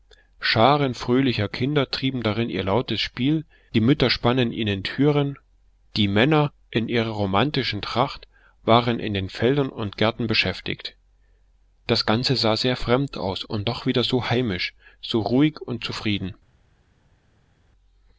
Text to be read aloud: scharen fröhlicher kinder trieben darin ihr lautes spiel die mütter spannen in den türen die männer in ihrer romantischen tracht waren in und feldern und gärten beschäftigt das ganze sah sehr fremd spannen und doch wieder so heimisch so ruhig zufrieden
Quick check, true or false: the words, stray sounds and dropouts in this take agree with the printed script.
false